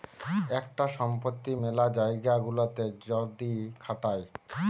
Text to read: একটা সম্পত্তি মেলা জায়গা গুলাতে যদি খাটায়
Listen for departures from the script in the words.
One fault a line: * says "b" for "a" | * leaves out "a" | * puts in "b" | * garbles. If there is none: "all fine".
all fine